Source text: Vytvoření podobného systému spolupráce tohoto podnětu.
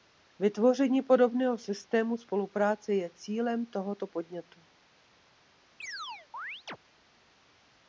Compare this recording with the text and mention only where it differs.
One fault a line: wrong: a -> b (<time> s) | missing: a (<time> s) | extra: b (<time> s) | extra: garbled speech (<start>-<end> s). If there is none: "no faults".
extra: je cílem (2.9 s)